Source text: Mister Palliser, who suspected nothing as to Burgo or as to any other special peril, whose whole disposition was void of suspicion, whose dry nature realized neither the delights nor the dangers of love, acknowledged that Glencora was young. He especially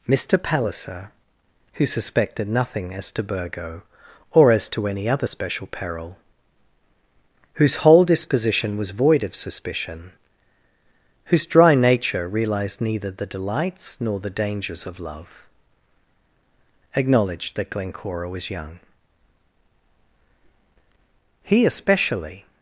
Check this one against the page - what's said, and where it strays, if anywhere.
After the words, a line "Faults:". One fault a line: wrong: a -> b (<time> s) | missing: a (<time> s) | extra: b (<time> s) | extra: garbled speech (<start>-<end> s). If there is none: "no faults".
Mister Palliser, who suspected nothing as to Burgo or as to any other special peril, whose whole disposition was void of suspicion, whose dry nature realized neither the delights nor the dangers of love, acknowledged that Glencora was young. He especially
Faults:
no faults